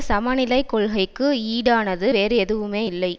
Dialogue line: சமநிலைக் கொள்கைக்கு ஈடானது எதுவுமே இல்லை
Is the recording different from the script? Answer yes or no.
yes